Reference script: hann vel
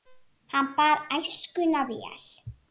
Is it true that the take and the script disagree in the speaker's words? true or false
true